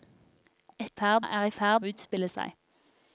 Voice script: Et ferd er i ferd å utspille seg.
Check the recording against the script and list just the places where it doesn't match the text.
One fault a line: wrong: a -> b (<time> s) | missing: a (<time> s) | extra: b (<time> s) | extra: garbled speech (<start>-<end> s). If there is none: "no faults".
no faults